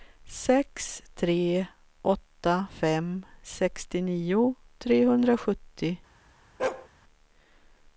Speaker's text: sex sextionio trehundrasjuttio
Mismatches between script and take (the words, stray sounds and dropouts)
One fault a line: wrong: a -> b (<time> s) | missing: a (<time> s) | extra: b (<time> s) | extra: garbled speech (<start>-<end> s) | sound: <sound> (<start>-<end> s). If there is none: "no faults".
extra: tre åtta fem (1.1 s)
sound: bark (6.6-6.9 s)